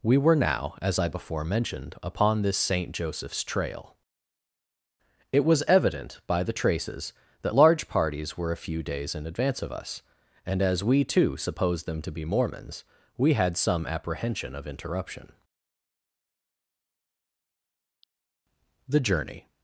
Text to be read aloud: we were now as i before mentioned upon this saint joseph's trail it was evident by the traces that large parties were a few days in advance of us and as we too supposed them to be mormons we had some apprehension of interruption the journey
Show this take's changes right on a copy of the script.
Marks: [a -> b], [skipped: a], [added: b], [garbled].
we were now as i before mentioned upon this saint joseph's trail it was evident by the traces that large parties were a few days in advance of us and as we too supposed them to be mormons we had some apprehension of interruption the journey